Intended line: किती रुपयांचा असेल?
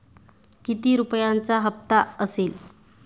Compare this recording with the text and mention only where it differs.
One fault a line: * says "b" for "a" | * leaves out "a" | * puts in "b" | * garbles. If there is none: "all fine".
* puts in "हप्ता"